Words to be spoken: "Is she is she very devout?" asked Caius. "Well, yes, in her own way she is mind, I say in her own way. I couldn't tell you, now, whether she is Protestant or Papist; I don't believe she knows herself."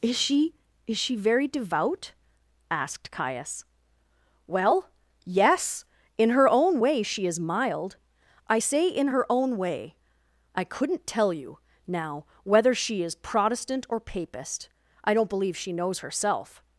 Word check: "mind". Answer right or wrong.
wrong